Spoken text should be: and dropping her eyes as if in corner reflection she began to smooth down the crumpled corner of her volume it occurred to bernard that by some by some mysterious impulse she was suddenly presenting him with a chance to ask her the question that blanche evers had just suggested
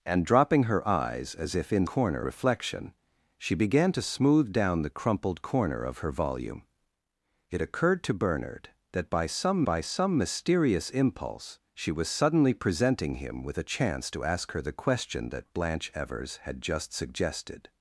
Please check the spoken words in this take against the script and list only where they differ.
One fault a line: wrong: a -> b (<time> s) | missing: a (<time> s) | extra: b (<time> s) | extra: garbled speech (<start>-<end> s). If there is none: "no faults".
no faults